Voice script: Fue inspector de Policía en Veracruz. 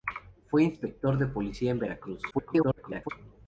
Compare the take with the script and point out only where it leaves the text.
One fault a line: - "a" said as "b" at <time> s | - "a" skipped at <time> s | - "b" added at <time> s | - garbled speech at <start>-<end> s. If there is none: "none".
- garbled speech at 2.3-3.1 s